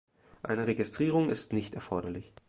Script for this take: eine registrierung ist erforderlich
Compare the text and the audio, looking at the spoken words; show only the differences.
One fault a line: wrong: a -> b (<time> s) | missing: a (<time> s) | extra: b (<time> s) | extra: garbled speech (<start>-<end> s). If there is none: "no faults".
extra: nicht (1.5 s)